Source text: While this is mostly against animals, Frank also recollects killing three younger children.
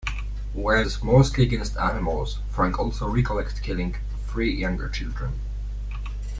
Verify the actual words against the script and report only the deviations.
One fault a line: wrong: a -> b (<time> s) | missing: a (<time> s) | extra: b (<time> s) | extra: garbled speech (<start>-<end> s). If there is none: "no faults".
missing: this (0.8 s)